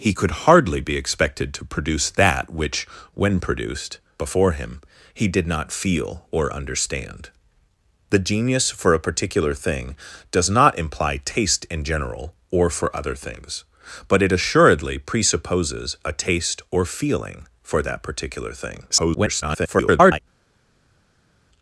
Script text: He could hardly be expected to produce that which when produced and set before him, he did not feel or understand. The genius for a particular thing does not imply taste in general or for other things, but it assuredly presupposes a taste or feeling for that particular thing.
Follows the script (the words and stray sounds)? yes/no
no